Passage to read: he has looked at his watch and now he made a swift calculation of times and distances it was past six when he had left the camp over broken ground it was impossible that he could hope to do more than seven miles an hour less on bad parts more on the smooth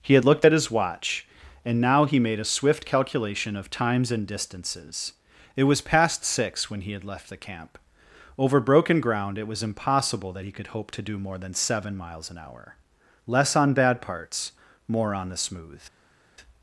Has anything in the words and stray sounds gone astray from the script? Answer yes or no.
yes